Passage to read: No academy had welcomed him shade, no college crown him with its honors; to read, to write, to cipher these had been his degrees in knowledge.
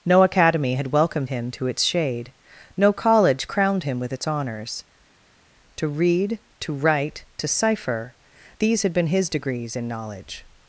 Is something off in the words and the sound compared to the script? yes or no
yes